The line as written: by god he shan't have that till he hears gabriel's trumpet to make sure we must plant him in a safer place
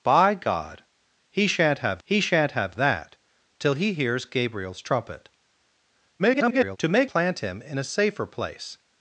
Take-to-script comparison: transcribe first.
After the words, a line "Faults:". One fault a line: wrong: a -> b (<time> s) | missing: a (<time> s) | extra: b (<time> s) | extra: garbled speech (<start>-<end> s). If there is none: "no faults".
by god he shan't have he shan't have that till he hears gabriel's trumpet [garbled] to make plant him in a safer place
Faults:
extra: he shan't have (2.0 s)
extra: garbled speech (6.2-6.8 s)
missing: sure we must (7.1 s)